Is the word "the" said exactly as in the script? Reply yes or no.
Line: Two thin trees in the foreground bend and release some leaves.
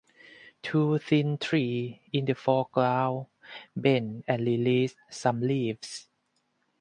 yes